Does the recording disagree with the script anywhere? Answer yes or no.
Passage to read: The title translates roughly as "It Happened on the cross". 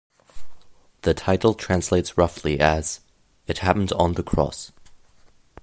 no